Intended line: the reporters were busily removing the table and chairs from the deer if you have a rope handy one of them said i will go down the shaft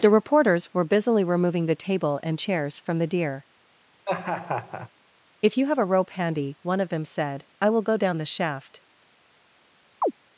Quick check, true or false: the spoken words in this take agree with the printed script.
true